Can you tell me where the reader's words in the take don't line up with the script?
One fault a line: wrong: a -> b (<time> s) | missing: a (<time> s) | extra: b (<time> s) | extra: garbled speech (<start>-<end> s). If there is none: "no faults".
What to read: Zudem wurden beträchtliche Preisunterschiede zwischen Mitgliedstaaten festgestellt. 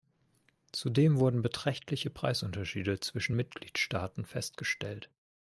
no faults